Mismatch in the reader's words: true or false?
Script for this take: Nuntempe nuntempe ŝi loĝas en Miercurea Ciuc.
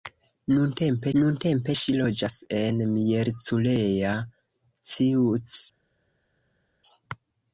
false